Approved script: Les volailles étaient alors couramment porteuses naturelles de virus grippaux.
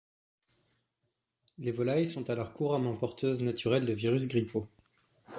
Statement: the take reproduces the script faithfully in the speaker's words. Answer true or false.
false